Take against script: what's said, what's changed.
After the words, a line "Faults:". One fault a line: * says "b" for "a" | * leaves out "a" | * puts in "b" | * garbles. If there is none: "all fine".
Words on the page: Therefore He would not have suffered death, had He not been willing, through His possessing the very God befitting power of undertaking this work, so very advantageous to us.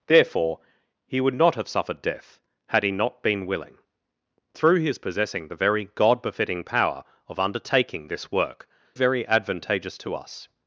Therefore He would not have suffered death, had He not been willing, through His possessing the very God befitting power of undertaking this work, very advantageous to us.
Faults:
* leaves out "so"